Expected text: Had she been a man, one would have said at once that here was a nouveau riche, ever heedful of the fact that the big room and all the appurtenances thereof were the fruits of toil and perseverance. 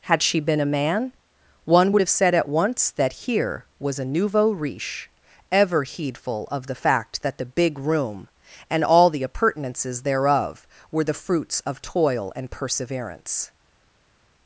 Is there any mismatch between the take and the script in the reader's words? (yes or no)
no